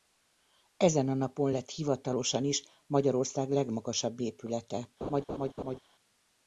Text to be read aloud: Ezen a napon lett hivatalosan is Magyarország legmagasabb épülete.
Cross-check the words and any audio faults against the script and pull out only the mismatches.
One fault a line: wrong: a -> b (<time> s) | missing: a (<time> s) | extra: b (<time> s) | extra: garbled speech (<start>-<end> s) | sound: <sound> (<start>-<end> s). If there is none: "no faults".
sound: laugh (5.0-5.8 s)